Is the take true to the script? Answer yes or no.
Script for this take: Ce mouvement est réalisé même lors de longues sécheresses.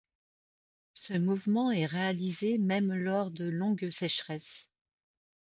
yes